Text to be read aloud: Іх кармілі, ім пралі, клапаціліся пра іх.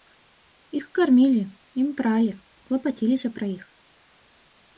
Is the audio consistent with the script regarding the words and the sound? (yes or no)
yes